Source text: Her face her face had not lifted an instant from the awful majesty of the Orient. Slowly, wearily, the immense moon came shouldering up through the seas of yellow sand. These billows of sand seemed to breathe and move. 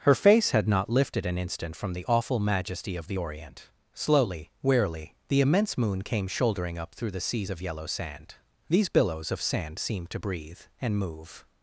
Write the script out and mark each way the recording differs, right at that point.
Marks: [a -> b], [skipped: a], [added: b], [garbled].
Her face [skipped: her face] had not lifted an instant from the awful majesty of the Orient. Slowly, wearily, the immense moon came shouldering up through the seas of yellow sand. These billows of sand seemed to breathe and move.